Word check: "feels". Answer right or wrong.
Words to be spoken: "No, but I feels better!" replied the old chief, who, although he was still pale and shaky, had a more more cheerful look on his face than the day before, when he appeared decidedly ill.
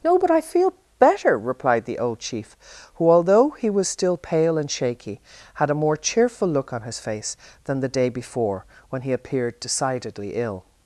wrong